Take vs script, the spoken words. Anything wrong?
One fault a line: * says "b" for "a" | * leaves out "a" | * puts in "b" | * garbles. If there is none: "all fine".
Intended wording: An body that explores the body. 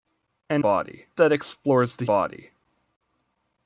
all fine